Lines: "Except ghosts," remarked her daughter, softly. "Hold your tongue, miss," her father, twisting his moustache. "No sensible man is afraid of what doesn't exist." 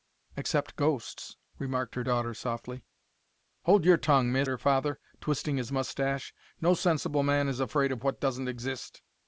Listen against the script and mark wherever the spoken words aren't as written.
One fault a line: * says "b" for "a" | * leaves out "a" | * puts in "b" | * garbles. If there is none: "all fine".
all fine